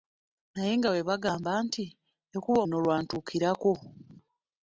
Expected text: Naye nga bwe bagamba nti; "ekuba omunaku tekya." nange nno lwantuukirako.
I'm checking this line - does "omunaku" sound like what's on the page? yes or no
no